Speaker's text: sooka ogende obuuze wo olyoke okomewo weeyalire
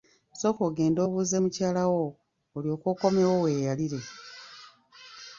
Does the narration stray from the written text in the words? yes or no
yes